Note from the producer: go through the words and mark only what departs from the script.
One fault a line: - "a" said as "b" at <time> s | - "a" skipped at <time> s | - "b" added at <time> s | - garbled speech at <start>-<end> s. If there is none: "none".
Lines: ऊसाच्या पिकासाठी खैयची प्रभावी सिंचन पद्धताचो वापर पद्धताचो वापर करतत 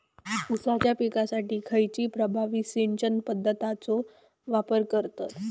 - "पद्धताचो वापर" skipped at 4.8 s